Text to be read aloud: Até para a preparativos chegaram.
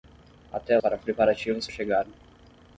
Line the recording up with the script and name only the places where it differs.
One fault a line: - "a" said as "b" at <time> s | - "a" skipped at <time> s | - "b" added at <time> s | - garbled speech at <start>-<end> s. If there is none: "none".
none